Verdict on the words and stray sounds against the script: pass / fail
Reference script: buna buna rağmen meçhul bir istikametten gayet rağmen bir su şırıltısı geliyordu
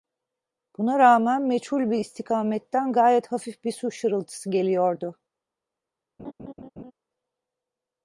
fail